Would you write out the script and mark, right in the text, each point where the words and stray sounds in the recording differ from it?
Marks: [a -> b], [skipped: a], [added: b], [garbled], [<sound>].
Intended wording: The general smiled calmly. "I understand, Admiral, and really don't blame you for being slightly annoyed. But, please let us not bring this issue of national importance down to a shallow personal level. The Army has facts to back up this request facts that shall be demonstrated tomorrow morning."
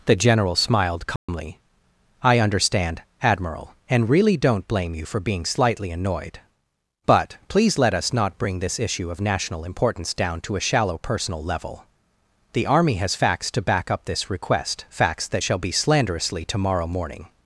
The general smiled calmly. [dropout] "I understand, Admiral, and really don't blame you for being slightly annoyed. But, please let us not bring this issue of national importance down to a shallow personal level. The Army has facts to back up this request facts that shall be [demonstrated -> slanderously] tomorrow morning."